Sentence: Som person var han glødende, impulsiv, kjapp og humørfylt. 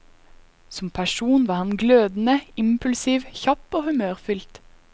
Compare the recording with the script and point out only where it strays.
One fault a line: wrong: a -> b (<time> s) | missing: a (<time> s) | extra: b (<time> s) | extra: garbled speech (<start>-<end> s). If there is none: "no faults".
no faults